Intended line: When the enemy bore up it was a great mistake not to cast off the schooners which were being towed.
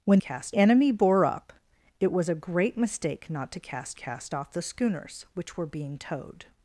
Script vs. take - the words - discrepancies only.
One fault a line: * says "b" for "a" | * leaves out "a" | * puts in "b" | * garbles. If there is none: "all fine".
* says "cast" for "the"
* puts in "cast"